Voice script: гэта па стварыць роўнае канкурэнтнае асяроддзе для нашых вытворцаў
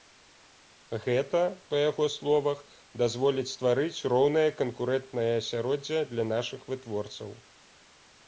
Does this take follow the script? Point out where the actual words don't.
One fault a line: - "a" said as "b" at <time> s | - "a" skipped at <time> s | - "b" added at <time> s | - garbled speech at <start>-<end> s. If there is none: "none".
- "яго словах дазволіць" added at 1.9 s